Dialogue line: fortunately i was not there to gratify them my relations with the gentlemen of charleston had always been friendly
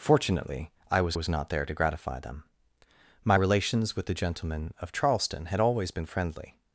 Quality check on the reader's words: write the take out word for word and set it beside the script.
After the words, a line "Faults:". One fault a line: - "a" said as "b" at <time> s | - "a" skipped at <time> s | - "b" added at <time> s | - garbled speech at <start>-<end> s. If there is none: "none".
fortunately i was was not there to gratify them my relations with the gentlemen of charleston had always been friendly
Faults:
- "was" added at 1.1 s